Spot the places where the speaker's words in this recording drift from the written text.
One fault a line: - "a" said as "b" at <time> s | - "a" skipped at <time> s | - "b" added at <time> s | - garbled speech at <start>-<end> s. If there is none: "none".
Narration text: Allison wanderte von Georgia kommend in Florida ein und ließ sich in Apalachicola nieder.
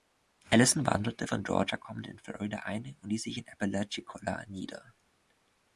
none